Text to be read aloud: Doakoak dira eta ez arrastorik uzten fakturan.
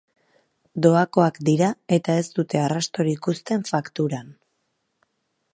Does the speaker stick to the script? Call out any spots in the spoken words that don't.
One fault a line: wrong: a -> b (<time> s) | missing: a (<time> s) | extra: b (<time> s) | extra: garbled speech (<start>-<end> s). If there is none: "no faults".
extra: dute (2.4 s)